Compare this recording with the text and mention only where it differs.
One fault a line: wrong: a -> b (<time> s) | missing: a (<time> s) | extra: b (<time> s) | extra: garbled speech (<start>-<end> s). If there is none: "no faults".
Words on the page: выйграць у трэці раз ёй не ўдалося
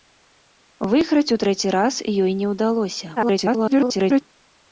extra: garbled speech (3.2-4.2 s)